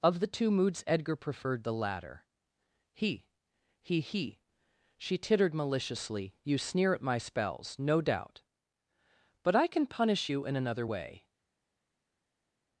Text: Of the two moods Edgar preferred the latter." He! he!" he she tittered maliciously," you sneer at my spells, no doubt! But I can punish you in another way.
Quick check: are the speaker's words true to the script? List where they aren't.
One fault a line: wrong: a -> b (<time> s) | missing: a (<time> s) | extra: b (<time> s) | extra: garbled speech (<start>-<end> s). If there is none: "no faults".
no faults